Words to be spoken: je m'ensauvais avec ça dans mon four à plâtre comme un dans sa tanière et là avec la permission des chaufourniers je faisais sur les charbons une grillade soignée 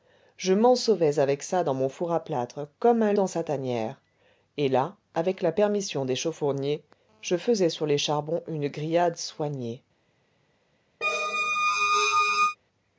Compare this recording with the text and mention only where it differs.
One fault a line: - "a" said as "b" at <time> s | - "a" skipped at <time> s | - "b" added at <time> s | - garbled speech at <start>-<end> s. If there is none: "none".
none